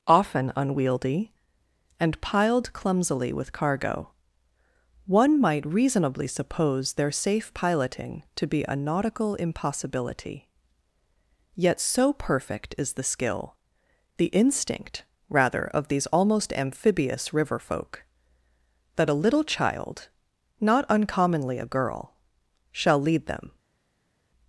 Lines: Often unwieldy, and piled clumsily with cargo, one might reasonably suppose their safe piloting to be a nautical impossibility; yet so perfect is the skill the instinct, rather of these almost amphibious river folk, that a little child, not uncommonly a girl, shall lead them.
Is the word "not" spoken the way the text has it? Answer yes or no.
yes